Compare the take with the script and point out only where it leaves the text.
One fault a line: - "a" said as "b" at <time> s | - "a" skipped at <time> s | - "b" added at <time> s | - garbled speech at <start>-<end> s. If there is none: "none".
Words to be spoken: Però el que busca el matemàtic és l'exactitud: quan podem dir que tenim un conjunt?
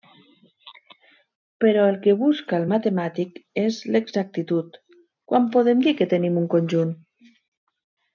none